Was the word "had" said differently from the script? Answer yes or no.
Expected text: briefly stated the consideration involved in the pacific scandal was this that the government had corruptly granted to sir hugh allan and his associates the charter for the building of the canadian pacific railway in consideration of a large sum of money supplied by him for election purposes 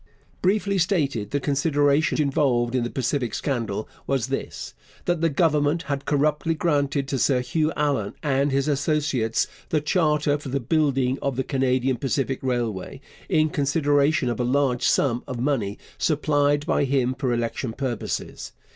no